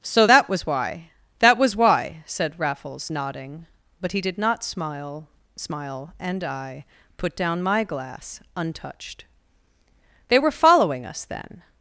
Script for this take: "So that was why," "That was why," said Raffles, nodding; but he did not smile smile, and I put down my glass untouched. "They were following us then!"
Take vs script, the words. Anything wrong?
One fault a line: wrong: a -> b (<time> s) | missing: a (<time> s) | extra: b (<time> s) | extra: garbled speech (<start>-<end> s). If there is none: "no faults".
no faults